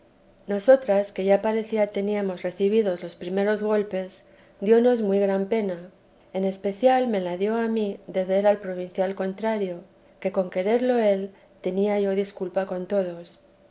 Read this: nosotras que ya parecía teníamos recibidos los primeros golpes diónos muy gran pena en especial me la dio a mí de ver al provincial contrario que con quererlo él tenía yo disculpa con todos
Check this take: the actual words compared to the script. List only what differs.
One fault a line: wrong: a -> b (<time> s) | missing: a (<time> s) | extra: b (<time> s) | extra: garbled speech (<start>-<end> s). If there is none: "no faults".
no faults